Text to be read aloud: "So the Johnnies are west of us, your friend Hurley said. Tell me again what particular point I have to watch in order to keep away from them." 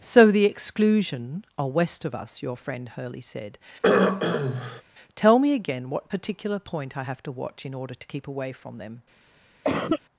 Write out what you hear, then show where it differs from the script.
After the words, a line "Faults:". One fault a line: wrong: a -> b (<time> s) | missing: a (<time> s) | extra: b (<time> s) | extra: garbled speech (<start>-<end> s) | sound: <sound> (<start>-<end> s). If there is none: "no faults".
"So the Exclusion are west of us, your friend Hurley said. Tell me again what particular point I have to watch in order to keep away from them."
Faults:
wrong: Johnnies -> Exclusion (0.5 s)
sound: throat clearing (3.8-4.8 s)
sound: cough (9.6-10.0 s)